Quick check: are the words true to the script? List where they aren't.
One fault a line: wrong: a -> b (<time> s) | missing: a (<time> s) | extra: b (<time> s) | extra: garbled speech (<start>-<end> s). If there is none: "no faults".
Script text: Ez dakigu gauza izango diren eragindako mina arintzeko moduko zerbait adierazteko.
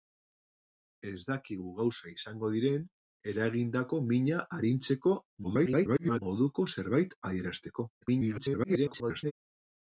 extra: garbled speech (5.4-6.2 s)
extra: garbled speech (8.0-9.3 s)